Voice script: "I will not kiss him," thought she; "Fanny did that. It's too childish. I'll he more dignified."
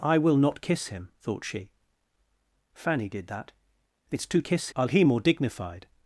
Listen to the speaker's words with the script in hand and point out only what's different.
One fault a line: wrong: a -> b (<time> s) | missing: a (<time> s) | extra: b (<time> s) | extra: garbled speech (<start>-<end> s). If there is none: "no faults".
wrong: childish -> kiss (4.4 s)